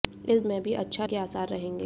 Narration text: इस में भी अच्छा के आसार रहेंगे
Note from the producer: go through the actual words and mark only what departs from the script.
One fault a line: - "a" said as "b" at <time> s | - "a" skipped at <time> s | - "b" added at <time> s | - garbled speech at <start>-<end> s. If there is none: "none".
none